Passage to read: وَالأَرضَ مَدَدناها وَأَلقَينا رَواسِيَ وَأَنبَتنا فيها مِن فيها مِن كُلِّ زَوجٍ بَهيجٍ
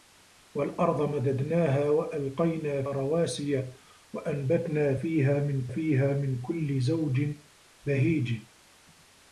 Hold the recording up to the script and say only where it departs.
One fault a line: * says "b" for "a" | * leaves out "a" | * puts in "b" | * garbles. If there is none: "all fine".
all fine